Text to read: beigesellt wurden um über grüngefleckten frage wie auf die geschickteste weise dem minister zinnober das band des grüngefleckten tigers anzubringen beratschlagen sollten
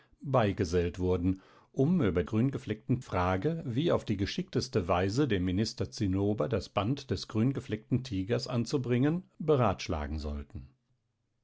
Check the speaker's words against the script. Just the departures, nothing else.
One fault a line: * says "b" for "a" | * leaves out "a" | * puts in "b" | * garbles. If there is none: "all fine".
all fine